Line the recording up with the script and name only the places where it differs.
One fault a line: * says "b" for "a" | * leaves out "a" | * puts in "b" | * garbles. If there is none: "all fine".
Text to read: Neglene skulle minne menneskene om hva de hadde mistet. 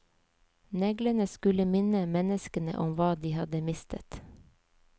all fine